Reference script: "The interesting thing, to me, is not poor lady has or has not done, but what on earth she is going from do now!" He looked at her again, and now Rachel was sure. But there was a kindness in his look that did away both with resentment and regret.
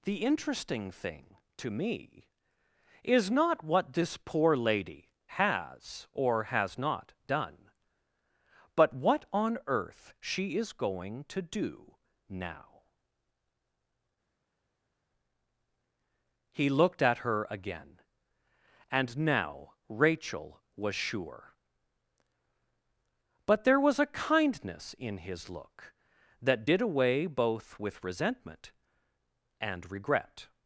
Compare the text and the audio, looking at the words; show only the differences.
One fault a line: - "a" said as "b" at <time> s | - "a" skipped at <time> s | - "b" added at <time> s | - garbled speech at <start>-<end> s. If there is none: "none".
- "what this" added at 3.6 s
- "from" said as "to" at 11.2 s